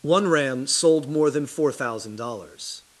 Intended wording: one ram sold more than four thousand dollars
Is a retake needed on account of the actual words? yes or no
no